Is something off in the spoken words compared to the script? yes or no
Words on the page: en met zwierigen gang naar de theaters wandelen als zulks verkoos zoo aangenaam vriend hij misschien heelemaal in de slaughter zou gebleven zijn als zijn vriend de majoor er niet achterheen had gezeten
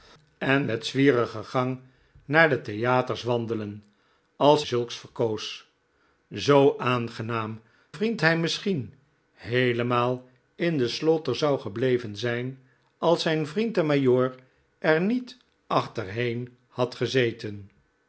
no